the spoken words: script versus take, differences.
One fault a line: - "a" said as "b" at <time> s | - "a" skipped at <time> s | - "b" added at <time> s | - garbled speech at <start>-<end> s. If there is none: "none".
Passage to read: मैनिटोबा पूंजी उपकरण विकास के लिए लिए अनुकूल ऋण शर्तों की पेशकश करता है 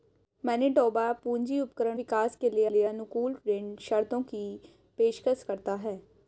none